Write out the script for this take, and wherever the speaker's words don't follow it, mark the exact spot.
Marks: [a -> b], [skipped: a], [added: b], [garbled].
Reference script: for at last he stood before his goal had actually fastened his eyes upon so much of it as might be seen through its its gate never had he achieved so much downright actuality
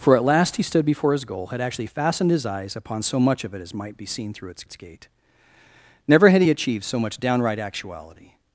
for at last he stood before his goal had actually fastened his eyes upon so much of it as might be seen through its its gate never had he achieved so much downright actuality